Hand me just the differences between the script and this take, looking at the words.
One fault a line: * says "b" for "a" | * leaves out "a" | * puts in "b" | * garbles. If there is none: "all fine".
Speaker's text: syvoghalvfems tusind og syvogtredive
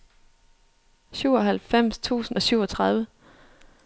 all fine